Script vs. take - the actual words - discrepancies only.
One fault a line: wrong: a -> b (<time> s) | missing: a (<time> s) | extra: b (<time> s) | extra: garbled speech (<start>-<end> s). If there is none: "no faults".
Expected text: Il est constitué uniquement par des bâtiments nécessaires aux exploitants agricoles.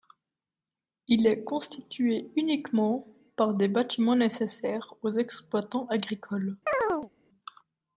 no faults